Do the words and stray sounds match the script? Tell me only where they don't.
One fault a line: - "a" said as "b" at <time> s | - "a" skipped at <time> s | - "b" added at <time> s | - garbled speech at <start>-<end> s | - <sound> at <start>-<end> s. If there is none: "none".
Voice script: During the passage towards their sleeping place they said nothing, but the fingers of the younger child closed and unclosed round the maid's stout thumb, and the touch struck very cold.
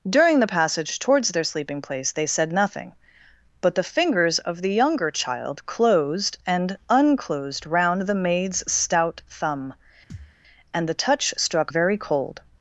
- thud at 10.1-10.4 s